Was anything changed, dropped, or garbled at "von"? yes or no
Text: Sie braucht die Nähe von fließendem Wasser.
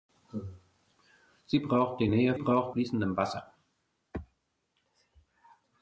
yes